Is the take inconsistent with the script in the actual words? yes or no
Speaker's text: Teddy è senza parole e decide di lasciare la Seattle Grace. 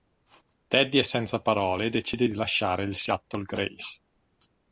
yes